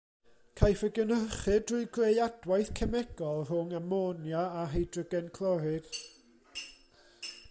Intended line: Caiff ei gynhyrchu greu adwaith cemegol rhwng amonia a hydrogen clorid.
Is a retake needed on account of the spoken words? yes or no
yes